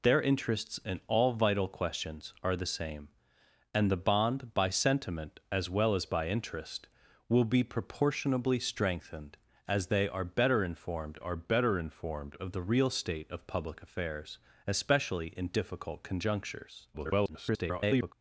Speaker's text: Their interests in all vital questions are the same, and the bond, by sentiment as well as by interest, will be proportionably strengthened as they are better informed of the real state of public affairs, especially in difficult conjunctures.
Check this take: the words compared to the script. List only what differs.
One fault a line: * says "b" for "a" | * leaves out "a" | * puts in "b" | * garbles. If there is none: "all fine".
* puts in "are better informed"
* garbles